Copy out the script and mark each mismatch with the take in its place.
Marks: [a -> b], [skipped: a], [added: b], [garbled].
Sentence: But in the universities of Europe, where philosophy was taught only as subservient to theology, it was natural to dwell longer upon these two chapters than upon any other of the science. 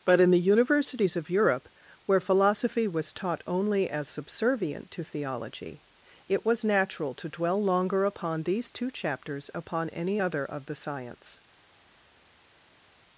But in the universities of Europe, where philosophy was taught only as subservient to theology, it was natural to dwell longer upon these two chapters [skipped: than] upon any other of the science.